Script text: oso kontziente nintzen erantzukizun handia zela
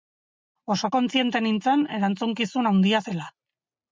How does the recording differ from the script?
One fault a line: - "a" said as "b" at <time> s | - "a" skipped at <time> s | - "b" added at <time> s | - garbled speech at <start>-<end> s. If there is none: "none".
none